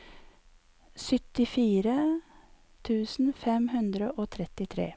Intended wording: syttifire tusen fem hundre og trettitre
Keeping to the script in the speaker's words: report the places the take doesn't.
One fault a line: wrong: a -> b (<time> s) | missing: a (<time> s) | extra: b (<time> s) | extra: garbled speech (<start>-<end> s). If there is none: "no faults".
no faults